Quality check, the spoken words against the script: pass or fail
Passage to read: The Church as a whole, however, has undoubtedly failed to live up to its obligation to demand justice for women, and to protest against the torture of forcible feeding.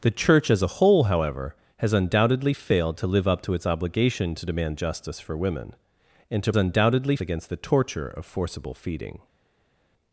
fail